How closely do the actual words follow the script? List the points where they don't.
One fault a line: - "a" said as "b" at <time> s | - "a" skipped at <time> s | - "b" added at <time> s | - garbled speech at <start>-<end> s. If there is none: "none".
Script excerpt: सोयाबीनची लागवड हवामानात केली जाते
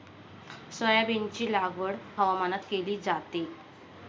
none